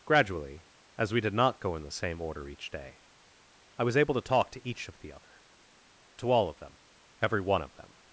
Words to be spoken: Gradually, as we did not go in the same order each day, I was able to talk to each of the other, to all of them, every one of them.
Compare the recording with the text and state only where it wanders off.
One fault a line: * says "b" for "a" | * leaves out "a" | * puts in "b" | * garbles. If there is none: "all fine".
all fine